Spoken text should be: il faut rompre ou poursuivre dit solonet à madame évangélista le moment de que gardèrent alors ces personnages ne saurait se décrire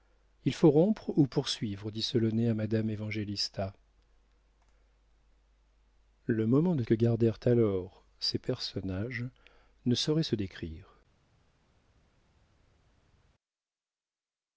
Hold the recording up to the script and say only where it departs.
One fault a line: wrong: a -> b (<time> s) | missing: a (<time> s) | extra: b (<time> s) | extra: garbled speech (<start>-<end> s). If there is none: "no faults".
no faults